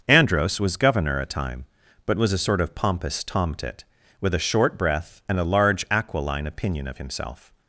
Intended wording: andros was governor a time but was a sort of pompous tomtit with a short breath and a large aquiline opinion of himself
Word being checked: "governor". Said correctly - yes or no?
yes